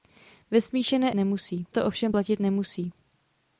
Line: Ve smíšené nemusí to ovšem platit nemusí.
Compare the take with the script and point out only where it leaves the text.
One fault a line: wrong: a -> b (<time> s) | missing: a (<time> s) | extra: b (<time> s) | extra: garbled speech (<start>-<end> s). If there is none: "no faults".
no faults